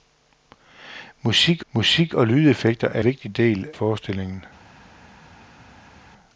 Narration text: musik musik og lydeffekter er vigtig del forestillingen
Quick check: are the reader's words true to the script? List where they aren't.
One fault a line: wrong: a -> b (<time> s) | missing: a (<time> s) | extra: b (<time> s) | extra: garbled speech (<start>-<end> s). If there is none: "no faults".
no faults